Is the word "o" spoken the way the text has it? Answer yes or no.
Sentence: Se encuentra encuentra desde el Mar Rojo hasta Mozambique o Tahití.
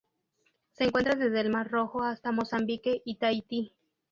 no